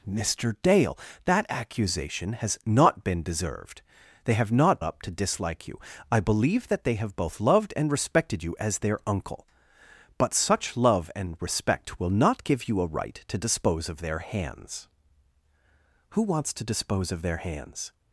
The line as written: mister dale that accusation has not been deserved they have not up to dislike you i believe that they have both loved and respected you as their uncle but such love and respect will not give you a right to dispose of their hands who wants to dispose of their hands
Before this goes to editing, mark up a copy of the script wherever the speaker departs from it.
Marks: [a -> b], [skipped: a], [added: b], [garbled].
mister dale that accusation has not been deserved they have not up to dislike you i believe that they have both loved and respected you as their uncle but such love and respect will not give you a right to dispose of their hands who wants to dispose of their hands